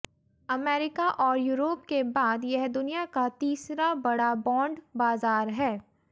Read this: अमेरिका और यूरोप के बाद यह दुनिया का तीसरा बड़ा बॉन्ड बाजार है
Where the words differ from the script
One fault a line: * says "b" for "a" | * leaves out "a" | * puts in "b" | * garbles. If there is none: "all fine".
all fine